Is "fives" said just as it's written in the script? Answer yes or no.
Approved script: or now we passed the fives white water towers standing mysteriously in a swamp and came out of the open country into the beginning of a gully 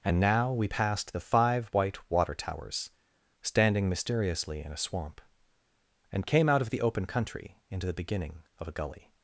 no